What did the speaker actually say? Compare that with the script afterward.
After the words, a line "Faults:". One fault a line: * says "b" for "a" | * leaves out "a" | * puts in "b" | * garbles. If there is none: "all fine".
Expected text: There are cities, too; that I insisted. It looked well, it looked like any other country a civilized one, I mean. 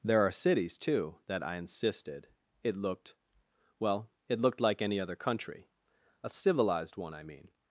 There are cities, too; that I insisted. It looked well, it looked like any other country a civilized one, I mean.
Faults:
all fine